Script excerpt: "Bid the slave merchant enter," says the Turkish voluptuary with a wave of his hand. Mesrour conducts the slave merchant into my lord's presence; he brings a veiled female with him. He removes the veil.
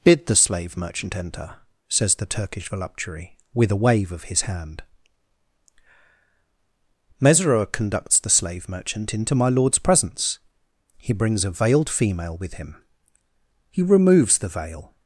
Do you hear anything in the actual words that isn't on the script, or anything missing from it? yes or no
no